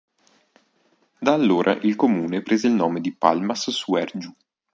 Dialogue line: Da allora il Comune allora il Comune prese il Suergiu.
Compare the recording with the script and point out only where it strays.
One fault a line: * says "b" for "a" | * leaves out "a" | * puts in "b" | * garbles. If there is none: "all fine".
* says "prese" for "allora"
* says "nome di Palmas" for "Comune prese il"